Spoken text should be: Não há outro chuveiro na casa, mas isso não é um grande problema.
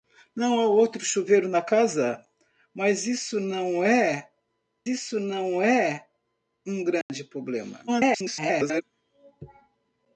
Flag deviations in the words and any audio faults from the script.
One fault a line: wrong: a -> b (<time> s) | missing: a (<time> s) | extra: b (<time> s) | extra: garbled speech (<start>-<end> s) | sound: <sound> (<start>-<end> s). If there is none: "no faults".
extra: isso não é (4.9 s)
sound: dropout (7.0-7.1 s)
extra: garbled speech (7.9-8.8 s)